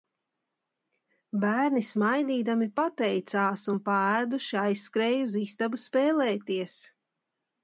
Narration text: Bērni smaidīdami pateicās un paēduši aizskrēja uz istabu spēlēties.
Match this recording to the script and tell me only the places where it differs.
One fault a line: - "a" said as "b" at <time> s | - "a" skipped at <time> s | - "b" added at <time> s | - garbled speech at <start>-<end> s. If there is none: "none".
none